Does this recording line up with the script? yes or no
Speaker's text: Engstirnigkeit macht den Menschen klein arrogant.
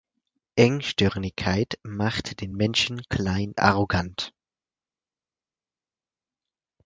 yes